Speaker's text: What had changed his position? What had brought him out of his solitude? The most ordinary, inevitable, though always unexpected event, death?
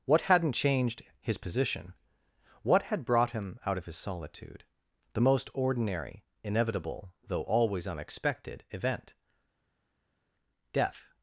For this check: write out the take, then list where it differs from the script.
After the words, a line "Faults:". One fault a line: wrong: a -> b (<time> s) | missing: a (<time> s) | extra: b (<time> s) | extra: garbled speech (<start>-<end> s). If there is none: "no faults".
What hadn't changed his position? What had brought him out of his solitude? The most ordinary, inevitable, though always unexpected event, death?
Faults:
wrong: had -> hadn't (0.2 s)